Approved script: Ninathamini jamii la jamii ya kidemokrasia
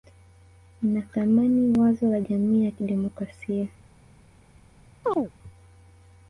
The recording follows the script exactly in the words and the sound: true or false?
false